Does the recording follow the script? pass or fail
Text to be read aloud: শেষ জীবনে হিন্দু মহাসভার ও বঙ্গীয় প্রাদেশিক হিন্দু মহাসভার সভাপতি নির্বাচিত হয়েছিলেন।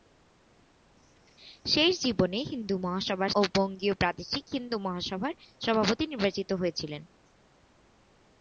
pass